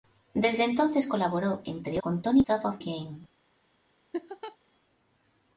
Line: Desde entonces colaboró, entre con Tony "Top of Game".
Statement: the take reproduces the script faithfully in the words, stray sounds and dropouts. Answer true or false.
false